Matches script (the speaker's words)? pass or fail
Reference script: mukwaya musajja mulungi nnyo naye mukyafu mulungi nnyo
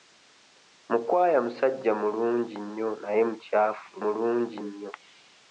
pass